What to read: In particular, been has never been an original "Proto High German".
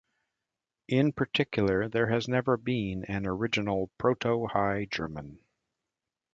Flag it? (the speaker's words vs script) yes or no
yes